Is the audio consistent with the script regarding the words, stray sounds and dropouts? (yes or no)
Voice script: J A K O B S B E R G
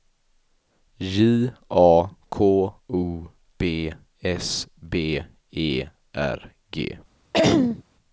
no